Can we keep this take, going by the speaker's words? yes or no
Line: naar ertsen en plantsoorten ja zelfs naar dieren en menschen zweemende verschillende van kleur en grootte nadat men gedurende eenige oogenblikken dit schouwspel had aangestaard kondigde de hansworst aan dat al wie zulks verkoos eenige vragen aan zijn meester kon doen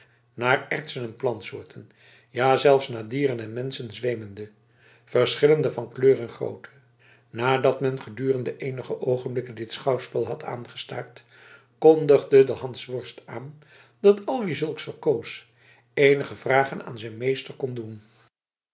yes